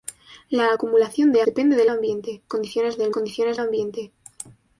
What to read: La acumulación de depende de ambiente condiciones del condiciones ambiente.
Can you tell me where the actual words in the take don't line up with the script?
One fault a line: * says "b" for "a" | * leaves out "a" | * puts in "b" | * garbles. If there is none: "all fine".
all fine